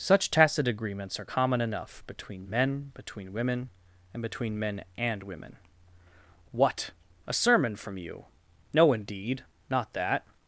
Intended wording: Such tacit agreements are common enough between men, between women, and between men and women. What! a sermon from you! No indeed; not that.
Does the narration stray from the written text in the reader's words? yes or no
no